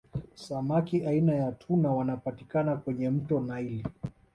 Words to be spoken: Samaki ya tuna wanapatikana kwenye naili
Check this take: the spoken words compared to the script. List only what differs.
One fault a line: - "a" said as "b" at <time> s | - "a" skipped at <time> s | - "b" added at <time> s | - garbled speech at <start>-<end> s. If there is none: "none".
- "aina" added at 1.1 s
- "mto" added at 3.1 s